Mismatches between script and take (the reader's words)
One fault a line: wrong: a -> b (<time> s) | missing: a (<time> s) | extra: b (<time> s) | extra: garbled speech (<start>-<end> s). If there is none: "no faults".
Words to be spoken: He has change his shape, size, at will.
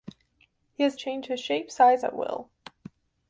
no faults